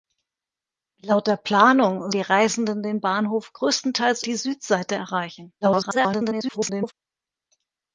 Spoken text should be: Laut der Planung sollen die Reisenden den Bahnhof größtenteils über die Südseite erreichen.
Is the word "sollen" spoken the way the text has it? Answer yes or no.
no